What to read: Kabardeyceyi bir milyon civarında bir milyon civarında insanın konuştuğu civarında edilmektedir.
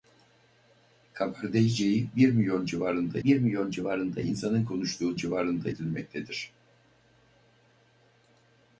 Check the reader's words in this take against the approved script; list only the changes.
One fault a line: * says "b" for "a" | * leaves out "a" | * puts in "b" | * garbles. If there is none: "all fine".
all fine